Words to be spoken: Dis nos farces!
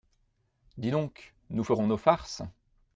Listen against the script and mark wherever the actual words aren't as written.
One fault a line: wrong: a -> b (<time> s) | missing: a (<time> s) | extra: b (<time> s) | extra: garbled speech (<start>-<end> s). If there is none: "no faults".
extra: donc nous ferons (0.9 s)